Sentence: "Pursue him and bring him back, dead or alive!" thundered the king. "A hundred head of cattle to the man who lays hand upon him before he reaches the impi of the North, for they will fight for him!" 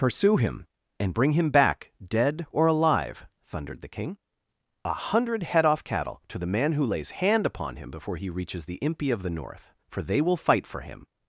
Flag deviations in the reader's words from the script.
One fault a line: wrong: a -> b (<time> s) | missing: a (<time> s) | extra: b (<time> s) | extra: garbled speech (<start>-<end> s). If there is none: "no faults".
wrong: of -> off (5.7 s)